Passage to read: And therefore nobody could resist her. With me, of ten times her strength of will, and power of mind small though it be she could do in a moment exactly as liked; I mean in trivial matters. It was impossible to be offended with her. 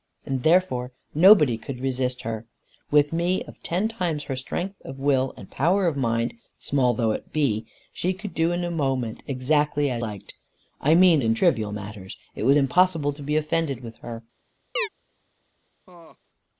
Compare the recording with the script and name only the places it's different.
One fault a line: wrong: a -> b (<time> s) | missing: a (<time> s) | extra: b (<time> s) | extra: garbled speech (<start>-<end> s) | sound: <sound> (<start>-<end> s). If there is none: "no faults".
sound: chirp (14.8-14.9 s)
sound: laugh (15.9-16.2 s)